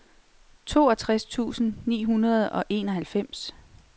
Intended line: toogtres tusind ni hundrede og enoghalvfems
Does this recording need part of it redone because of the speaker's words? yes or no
no